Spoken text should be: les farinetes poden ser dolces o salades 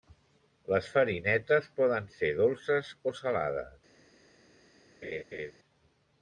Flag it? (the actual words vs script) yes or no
no